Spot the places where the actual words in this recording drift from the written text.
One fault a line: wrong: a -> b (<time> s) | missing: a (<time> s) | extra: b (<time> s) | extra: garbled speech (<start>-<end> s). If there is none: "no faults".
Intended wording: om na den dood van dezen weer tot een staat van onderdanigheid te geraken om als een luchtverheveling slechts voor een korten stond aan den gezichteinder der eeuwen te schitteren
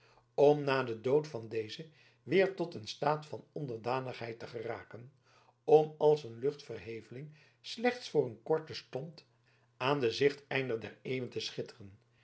no faults